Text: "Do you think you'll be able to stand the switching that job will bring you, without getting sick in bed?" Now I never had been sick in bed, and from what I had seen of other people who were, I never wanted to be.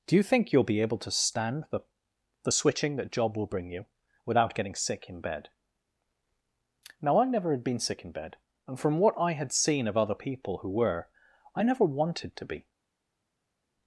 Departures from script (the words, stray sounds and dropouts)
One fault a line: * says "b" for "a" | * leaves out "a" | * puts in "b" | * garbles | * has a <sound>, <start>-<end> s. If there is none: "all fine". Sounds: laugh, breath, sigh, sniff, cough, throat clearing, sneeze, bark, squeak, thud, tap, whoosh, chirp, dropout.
* puts in "the"